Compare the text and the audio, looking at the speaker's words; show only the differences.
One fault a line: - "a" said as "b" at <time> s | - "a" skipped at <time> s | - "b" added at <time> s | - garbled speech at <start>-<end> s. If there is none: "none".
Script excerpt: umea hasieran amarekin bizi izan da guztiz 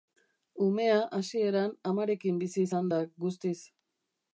none